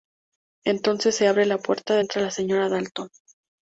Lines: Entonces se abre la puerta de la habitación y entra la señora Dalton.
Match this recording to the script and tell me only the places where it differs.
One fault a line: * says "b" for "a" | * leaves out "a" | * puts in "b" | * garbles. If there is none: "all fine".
* leaves out "la habitación y"